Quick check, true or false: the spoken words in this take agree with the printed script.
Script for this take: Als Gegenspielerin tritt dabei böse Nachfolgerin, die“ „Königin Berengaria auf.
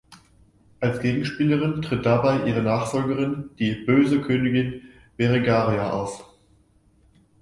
false